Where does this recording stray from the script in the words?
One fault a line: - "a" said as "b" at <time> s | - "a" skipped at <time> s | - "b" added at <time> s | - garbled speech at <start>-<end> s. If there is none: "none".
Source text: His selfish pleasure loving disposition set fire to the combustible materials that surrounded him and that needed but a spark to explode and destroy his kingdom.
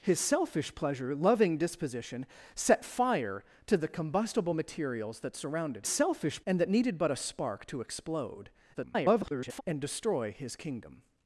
- "him" said as "selfish" at 5.9 s
- garbled speech at 8.7-9.6 s